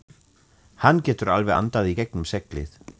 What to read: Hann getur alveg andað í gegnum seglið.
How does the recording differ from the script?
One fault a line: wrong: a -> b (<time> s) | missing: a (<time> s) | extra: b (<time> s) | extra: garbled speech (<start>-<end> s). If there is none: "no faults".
no faults